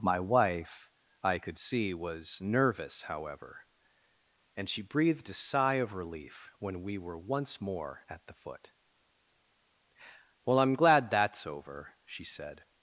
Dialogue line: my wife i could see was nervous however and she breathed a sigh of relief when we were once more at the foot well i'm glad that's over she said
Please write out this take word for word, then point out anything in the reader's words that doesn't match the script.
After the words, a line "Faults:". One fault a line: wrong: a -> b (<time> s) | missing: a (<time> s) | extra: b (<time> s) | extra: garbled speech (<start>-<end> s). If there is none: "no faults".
my wife i could see was nervous however and she breathed a sigh of relief when we were once more at the foot well i'm glad that's over she said
Faults:
no faults